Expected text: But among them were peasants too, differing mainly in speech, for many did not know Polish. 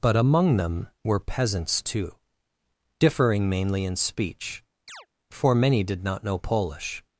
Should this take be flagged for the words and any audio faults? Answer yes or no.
yes